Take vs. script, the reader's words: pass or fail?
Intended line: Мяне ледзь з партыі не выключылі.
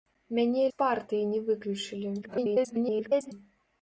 fail